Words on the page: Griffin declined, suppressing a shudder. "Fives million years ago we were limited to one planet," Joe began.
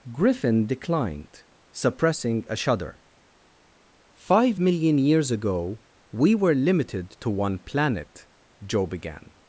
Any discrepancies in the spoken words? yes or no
yes